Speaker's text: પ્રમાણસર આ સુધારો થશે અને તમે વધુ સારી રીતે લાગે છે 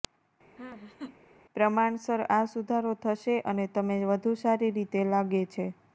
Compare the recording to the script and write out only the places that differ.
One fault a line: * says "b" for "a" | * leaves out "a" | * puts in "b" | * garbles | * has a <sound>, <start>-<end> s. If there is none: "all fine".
* has a laugh, 0.6-1.2 s